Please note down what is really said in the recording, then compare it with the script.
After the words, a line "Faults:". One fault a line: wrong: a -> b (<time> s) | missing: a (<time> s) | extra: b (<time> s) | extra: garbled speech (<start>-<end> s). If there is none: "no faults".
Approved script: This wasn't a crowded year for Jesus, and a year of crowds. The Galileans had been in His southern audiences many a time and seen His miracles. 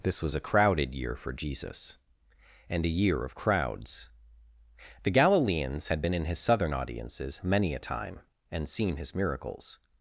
This was a crowded year for Jesus, and a year of crowds. The Galileans had been in His southern audiences many a time and seen His miracles.
Faults:
wrong: wasn't -> was (0.2 s)